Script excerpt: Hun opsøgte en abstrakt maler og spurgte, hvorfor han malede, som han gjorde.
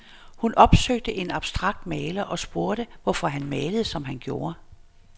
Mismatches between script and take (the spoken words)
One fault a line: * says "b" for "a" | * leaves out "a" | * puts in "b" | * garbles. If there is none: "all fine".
all fine